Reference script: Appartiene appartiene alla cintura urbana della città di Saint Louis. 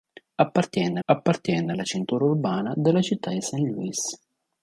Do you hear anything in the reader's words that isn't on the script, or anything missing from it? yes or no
no